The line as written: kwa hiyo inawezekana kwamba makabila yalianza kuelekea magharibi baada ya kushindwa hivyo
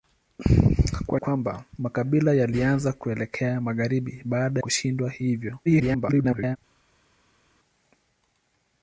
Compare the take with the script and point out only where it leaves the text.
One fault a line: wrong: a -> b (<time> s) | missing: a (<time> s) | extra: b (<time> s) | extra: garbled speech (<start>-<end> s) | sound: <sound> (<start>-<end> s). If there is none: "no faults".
missing: hiyo inawezekana (1.2 s)
missing: ya (4.6 s)
extra: garbled speech (5.7-6.6 s)